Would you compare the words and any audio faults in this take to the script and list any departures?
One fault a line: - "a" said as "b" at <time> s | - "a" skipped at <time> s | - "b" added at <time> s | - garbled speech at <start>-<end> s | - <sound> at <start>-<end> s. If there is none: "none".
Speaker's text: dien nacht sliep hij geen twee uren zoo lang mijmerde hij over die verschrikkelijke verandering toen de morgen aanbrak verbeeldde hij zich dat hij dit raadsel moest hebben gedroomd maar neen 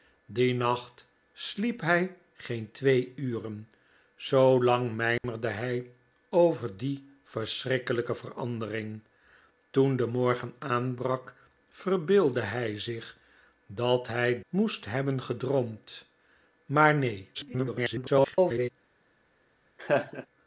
- dropout at 5.2-5.2 s
- "dit raadsel" skipped at 14.4 s
- garbled speech at 17.3-18.7 s
- laugh at 19.8-20.3 s